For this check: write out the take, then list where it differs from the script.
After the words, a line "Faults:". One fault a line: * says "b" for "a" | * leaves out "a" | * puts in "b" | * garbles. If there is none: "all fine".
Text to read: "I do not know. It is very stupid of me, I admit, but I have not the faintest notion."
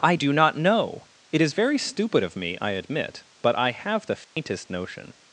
"I do not know. It is very stupid of me, I admit, but I have the faintest notion."
Faults:
* leaves out "not"